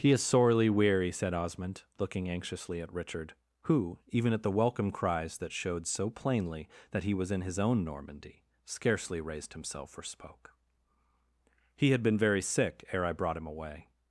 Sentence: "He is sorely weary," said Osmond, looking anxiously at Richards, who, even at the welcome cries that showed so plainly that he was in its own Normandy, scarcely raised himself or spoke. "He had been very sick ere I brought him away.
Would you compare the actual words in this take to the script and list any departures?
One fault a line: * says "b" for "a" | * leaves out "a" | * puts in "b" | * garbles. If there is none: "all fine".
* says "Richard" for "Richards"
* says "his" for "its"